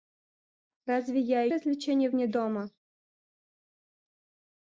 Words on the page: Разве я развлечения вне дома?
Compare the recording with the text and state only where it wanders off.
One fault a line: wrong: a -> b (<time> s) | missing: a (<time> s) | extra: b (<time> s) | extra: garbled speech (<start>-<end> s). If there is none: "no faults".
no faults